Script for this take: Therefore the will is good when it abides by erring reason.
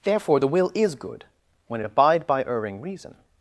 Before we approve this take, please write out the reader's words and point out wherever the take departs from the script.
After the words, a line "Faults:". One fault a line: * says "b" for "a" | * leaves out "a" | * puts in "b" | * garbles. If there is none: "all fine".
Therefore the will is good when it abide by erring reason.
Faults:
* says "abide" for "abides"